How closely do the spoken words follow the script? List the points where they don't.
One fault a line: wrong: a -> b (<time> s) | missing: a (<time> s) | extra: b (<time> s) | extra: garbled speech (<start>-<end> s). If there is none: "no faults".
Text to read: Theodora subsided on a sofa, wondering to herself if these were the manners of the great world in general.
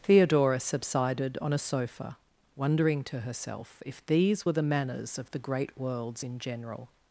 wrong: world -> worlds (5.8 s)